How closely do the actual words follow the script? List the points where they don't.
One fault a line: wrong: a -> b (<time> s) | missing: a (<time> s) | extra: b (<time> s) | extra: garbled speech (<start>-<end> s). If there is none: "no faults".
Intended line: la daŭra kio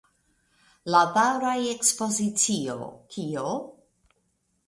extra: ekspozicio (1.7 s)